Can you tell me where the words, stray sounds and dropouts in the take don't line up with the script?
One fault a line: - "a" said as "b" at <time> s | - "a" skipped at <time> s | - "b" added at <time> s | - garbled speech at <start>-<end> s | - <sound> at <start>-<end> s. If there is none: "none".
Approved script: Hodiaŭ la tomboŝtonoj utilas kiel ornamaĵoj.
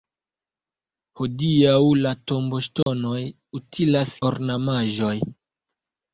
- dropout at 2.8-2.9 s
- "kiel" skipped at 4.2 s